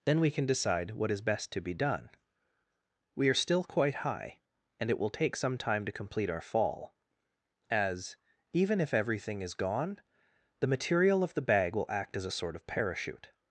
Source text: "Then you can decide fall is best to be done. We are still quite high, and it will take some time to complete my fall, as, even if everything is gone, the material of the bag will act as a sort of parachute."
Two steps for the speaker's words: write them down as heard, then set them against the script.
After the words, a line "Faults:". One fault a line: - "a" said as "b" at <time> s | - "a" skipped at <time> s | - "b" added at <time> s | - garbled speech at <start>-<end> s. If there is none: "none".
"Then we can decide what is best to be done. We are still quite high, and it will take some time to complete our fall, as, even if everything is gone, the material of the bag will act as a sort of parachute."
Faults:
- "you" said as "we" at 0.2 s
- "fall" said as "what" at 0.9 s
- "my" said as "our" at 6.3 s